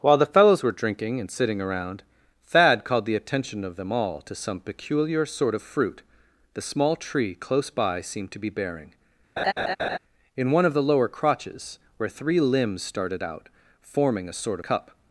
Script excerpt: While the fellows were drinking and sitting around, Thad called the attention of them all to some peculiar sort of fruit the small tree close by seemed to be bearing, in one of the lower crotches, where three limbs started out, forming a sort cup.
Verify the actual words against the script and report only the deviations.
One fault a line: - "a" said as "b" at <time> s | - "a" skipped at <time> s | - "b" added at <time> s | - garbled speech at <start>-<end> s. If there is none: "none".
none